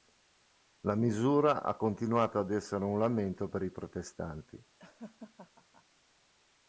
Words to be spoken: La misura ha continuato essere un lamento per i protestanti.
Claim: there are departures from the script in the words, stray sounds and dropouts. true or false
true